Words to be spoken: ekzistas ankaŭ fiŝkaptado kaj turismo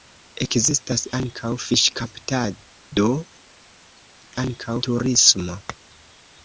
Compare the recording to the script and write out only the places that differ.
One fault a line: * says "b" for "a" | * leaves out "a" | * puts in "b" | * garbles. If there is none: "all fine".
* says "ankaŭ" for "kaj"